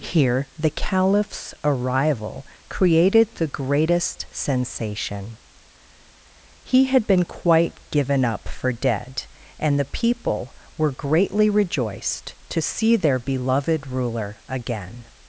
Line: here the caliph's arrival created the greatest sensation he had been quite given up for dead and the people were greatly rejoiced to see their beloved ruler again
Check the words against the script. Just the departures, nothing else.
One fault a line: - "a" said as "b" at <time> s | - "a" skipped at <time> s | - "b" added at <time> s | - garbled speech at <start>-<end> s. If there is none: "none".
none